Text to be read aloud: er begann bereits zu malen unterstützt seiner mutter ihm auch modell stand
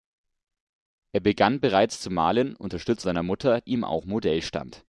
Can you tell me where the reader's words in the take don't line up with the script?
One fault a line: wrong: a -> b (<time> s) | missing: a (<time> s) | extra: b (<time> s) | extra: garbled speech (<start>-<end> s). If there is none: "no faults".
no faults